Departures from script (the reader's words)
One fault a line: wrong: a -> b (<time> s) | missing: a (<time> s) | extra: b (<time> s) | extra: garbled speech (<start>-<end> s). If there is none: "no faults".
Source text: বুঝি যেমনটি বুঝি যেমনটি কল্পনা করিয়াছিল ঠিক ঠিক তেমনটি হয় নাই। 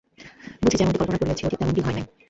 missing: বুঝি যেমনটি (1.0 s)
missing: ঠিক (1.6 s)